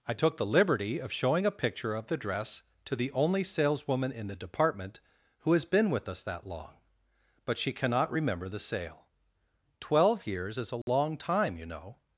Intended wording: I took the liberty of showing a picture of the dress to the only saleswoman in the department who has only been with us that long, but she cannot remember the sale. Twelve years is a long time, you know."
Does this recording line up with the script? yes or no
no